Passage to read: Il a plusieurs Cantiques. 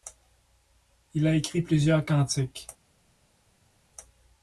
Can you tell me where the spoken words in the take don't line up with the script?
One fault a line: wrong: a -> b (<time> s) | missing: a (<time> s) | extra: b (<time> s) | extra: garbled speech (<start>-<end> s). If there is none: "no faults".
extra: écrit (1.4 s)